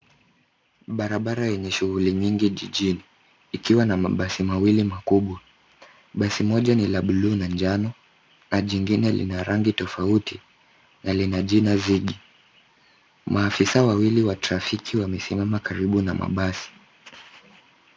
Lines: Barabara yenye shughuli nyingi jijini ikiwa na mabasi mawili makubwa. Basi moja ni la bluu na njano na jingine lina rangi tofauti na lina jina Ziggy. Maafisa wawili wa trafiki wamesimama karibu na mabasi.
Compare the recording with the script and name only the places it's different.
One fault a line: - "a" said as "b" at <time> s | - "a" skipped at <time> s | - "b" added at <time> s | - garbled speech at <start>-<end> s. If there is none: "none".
none